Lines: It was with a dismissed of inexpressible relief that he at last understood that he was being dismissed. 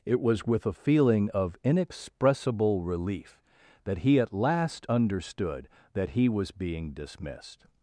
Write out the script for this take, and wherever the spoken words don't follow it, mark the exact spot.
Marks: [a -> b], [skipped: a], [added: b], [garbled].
It was with a [dismissed -> feeling] of inexpressible relief that he at last understood that he was being dismissed.